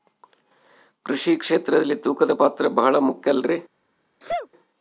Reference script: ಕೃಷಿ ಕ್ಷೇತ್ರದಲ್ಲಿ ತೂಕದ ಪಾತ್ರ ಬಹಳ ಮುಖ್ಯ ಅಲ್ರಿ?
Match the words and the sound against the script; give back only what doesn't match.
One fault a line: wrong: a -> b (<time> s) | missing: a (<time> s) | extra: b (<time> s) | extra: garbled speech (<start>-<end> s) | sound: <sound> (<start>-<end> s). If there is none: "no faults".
sound: sneeze (4.2-4.5 s)